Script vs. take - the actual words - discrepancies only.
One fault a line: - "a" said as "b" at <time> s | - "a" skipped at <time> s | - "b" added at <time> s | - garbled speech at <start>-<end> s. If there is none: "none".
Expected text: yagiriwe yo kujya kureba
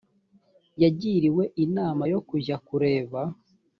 - "inama" added at 1.6 s